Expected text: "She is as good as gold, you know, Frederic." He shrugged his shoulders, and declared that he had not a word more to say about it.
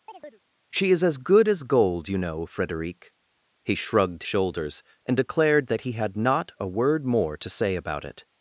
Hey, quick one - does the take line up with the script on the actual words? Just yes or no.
no